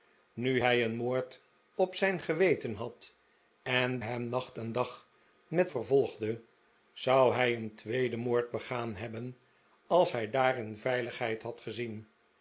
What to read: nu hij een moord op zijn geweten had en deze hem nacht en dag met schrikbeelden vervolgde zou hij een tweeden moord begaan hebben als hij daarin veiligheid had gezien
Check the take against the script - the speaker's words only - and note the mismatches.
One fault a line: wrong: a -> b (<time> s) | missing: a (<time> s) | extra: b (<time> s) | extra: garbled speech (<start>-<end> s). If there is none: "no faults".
missing: deze (4.0 s)
missing: schrikbeelden (5.7 s)